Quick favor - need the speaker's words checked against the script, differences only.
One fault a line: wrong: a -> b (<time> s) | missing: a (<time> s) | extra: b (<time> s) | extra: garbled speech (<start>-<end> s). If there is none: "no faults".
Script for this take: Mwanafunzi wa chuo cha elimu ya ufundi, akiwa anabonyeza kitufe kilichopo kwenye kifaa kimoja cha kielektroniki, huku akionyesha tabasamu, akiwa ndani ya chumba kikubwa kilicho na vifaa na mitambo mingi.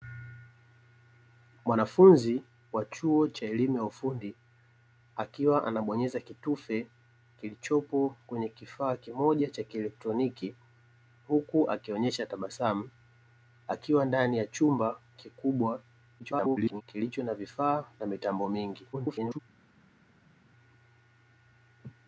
extra: garbled speech (16.2-16.8 s)
extra: garbled speech (18.9-19.4 s)